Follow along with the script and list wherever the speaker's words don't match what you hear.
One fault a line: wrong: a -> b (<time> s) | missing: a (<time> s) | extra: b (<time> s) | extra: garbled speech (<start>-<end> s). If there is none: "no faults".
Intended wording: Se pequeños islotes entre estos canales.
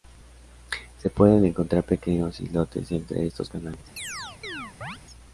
extra: pueden encontrar (1.1 s)